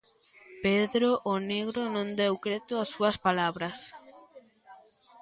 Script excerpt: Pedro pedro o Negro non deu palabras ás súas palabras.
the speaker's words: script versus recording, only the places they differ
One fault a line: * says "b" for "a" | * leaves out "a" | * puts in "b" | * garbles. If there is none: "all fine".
* leaves out "pedro"
* says "creto" for "palabras"